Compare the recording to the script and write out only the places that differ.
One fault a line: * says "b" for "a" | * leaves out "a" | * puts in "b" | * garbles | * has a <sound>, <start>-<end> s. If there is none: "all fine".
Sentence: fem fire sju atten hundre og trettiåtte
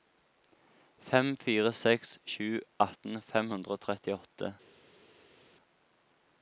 * puts in "seks"
* puts in "fem"